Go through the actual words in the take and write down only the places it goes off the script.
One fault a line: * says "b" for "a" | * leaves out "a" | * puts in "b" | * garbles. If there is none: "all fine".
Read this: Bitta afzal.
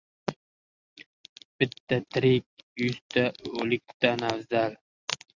* puts in "tirik yuzta o‘likdan"